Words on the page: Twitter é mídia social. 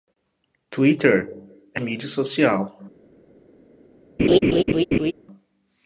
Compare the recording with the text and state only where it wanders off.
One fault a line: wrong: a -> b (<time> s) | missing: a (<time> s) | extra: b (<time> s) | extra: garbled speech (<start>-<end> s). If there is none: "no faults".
no faults